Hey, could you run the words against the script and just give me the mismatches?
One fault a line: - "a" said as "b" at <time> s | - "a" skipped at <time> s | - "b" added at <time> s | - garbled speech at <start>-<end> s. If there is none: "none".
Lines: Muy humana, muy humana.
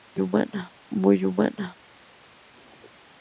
none